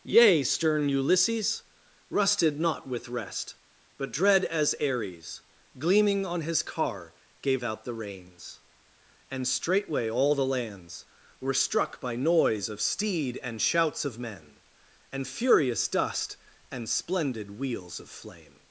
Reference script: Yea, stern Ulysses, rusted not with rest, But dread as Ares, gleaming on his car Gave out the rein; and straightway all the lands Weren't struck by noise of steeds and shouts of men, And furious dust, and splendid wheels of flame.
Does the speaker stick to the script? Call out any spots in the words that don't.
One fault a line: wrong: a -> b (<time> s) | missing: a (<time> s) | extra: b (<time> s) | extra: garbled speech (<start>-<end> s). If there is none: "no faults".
wrong: rein -> reins (7.9 s)
wrong: Weren't -> Were (11.4 s)
wrong: steeds -> steed (12.8 s)